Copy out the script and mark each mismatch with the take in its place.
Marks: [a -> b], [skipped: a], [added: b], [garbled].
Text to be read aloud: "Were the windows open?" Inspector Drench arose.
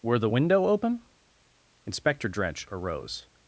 "Were the [windows -> window] open?" Inspector Drench arose.